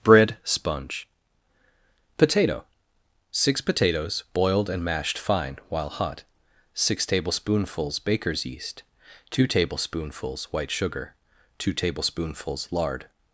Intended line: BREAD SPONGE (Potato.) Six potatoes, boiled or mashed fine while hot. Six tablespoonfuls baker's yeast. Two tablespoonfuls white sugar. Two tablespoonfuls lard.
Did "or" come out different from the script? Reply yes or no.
yes